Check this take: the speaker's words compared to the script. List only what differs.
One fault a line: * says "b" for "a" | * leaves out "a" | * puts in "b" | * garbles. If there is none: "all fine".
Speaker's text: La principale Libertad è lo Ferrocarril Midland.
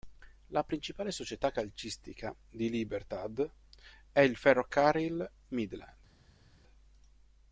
* puts in "società calcistica di"
* says "il" for "lo"